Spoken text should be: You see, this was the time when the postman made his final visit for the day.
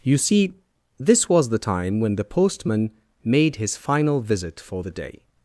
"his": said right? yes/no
yes